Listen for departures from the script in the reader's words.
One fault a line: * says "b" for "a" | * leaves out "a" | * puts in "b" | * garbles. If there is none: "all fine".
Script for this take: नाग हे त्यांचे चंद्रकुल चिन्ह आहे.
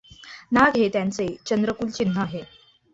all fine